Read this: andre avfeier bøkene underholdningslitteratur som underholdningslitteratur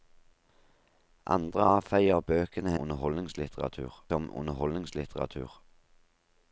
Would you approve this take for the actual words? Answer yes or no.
yes